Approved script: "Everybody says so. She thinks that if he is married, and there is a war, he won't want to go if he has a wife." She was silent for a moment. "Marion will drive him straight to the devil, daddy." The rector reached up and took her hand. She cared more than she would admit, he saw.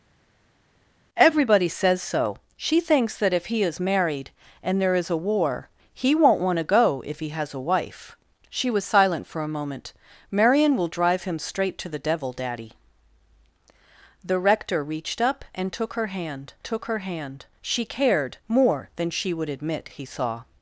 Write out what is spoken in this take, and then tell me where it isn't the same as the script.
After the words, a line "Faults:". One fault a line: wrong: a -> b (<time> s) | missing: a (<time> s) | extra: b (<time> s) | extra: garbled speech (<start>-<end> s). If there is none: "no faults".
"Everybody says so. She thinks that if he is married, and there is a war, he won't want to go if he has a wife." She was silent for a moment. "Marion will drive him straight to the devil, daddy." The rector reached up and took her hand took her hand. She cared more than she would admit, he saw.
Faults:
extra: took her hand (16.6 s)